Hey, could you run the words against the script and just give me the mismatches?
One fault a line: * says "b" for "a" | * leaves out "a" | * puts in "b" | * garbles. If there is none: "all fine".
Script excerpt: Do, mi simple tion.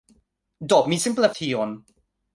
all fine